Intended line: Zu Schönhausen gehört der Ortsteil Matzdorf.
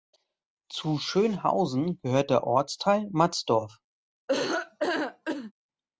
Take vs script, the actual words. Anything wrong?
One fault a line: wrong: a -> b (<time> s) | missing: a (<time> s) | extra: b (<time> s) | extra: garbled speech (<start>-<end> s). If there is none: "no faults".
no faults